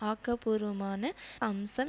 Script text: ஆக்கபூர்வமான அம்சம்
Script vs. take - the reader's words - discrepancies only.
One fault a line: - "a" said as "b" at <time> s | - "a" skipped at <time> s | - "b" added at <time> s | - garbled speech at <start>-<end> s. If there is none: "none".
none